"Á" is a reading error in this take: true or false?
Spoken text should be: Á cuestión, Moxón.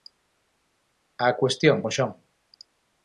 false